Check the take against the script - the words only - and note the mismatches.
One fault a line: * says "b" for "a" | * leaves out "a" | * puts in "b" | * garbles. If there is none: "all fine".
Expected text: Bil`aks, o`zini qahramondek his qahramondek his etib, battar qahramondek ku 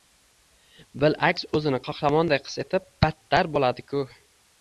* leaves out "qahramondek his"
* says "bo`ladi" for "qahramondek"